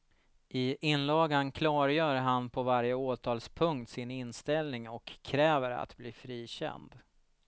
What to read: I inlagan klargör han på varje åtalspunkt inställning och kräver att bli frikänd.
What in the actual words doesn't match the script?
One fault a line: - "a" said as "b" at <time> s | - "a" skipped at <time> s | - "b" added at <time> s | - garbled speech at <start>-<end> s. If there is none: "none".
- "sin" added at 3.9 s